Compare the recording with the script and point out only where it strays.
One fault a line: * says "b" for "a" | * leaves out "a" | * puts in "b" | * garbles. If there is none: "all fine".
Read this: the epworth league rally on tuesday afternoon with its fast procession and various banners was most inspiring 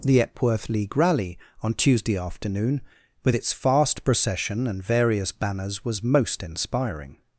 all fine